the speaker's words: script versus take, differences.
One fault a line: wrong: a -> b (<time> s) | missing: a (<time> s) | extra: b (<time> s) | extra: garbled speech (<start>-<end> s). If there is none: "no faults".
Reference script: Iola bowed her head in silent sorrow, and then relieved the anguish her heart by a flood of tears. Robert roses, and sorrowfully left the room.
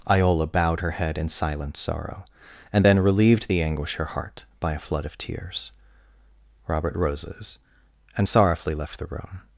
no faults